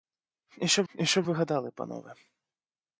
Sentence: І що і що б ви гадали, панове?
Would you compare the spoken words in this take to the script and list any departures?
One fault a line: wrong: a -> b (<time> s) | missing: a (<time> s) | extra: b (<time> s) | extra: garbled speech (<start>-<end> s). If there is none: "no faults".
no faults